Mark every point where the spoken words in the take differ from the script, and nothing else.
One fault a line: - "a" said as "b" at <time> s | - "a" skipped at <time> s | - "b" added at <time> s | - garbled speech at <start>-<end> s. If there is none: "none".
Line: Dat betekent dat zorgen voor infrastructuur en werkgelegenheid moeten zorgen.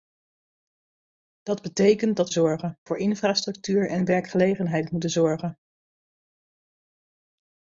none